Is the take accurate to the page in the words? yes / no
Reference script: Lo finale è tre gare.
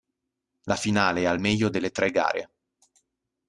no